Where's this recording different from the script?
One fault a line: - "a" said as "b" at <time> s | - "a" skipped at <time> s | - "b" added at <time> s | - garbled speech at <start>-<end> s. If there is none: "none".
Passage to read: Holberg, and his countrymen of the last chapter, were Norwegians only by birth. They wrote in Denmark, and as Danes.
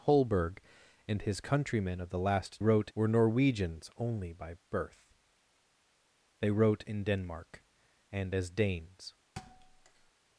- "chapter" said as "wrote" at 2.6 s